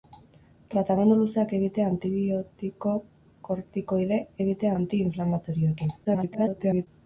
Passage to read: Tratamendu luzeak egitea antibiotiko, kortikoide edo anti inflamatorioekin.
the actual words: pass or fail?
fail